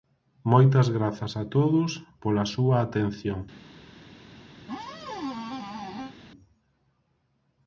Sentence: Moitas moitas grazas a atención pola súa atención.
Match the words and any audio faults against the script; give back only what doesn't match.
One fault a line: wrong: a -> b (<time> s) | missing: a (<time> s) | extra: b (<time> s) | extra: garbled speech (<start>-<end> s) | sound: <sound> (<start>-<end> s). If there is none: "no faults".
missing: moitas (0.9 s)
wrong: atención -> todos (1.6 s)
sound: squeak (4.6-6.1 s)